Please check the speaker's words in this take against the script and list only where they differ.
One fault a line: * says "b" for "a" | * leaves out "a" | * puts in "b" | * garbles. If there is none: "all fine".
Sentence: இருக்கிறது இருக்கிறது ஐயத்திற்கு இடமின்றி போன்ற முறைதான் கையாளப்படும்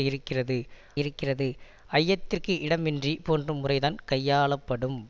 all fine